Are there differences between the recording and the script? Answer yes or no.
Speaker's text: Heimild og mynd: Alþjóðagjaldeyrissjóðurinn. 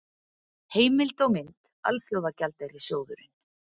no